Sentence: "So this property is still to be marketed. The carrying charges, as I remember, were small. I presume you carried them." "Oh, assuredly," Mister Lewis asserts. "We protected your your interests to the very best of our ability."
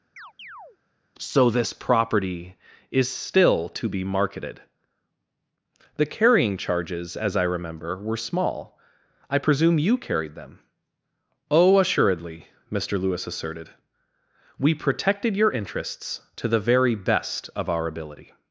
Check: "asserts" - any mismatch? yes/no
yes